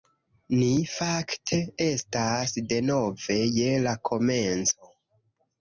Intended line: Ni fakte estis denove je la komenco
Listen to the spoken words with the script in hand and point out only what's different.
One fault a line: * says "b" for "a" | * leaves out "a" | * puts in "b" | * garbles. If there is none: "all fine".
* says "estas" for "estis"